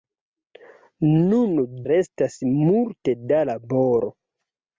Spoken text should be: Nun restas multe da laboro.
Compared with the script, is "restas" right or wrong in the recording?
right